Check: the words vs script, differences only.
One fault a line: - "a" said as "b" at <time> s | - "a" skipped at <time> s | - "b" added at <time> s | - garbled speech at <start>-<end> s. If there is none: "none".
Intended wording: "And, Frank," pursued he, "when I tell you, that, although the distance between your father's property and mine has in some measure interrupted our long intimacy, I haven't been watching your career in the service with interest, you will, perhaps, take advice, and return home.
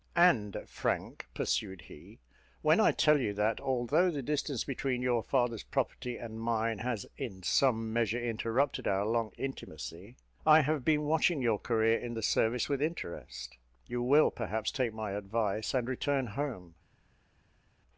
- "haven't" said as "have" at 10.6 s
- "my" added at 14.9 s